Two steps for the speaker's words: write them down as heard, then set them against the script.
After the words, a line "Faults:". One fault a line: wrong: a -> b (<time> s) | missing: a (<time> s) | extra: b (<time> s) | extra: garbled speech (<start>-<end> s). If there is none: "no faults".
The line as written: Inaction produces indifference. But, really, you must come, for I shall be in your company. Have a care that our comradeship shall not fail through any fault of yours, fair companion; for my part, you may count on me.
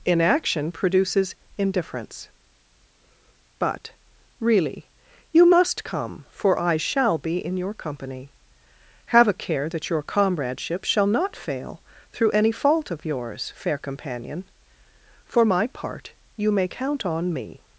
Inaction produces indifference. But, really, you must come, for I shall be in your company. Have a care that your comradeship shall not fail through any fault of yours, fair companion; for my part, you may count on me.
Faults:
wrong: our -> your (9.9 s)